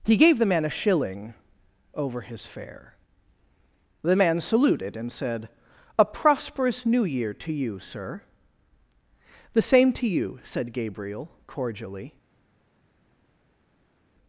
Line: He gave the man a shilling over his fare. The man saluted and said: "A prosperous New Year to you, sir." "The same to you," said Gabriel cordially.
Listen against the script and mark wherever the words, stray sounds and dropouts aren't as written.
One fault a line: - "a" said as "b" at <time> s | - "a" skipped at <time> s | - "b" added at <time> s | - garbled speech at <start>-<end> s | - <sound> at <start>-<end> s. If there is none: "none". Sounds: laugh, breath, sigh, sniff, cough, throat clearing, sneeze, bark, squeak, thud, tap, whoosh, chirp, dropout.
none